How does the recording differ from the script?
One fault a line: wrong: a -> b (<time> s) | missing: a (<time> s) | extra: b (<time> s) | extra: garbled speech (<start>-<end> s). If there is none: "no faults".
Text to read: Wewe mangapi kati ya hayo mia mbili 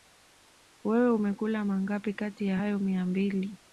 extra: umekula (1.1 s)